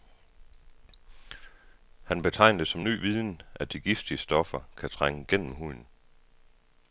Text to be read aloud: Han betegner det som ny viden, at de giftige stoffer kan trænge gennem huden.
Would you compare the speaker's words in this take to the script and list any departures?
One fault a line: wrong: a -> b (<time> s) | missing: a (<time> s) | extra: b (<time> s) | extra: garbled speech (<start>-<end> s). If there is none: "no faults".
no faults